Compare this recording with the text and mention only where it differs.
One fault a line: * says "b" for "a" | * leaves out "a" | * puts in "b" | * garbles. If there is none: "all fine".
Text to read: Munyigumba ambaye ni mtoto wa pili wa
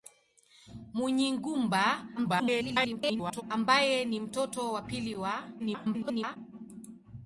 * garbles
* garbles